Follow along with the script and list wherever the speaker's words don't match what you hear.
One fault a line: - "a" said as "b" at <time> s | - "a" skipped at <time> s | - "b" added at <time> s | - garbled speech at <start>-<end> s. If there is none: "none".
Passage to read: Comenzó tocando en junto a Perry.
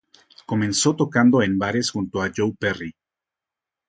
- "bares" added at 1.6 s
- "Joe" added at 2.3 s